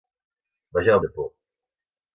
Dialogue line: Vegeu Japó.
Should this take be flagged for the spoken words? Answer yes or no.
no